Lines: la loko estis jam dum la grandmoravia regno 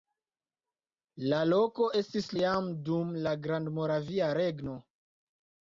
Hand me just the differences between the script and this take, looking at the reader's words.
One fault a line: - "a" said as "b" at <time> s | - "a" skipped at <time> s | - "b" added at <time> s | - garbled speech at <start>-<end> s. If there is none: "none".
none